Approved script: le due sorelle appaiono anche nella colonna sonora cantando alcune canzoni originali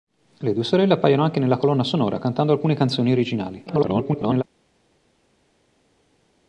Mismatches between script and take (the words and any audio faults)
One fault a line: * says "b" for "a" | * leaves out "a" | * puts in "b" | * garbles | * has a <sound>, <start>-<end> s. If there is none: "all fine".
* garbles